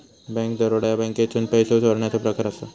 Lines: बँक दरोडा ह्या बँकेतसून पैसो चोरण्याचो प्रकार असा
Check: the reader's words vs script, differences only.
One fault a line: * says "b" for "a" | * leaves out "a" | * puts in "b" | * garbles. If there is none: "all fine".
all fine